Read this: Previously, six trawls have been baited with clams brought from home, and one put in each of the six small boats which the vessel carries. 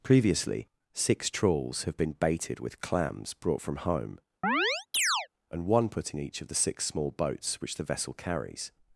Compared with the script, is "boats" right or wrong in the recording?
right